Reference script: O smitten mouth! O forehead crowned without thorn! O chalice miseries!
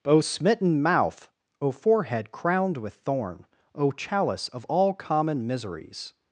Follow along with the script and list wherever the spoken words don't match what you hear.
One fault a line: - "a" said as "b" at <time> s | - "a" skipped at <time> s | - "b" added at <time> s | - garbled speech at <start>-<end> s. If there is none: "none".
- "without" said as "with" at 2.8 s
- "of all common" added at 4.5 s